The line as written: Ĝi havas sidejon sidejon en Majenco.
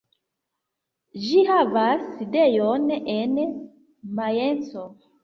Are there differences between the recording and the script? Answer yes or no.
yes